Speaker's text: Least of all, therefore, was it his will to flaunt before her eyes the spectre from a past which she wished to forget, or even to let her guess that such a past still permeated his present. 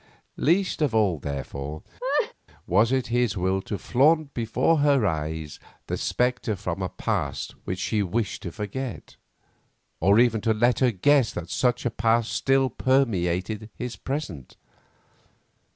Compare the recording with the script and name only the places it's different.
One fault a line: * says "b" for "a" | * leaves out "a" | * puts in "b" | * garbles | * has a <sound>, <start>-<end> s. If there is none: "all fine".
* has a laugh, 2.0-2.3 s